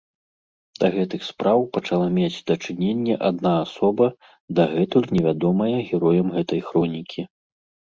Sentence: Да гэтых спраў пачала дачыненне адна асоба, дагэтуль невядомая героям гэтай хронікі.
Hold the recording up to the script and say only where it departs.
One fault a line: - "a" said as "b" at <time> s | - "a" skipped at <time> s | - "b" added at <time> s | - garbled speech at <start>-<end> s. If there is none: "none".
- "мець" added at 2.1 s